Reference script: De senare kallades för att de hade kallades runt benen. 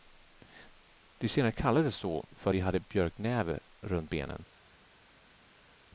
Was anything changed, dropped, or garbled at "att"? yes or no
no